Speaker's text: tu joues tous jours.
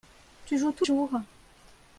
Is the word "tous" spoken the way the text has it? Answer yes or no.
yes